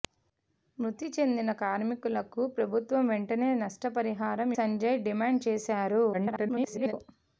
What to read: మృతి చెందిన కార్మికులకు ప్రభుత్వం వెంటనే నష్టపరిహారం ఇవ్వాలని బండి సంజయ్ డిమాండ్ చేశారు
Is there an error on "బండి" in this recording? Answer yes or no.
yes